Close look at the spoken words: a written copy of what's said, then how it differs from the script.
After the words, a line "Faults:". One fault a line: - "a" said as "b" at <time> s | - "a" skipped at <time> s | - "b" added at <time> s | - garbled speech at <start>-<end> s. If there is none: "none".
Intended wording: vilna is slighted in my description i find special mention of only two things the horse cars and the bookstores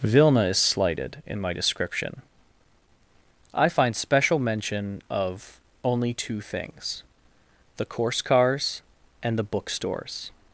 vilna is slighted in my description i find special mention of only two things the course cars and the bookstores
Faults:
- "horse" said as "course" at 7.8 s